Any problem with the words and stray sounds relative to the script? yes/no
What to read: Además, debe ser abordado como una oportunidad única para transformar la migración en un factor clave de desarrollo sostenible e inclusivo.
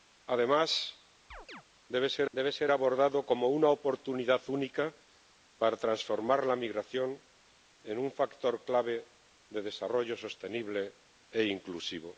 yes